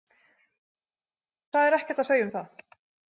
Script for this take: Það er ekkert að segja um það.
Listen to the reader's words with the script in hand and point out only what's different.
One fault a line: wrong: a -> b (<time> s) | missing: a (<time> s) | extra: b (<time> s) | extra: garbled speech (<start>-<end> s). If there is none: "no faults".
no faults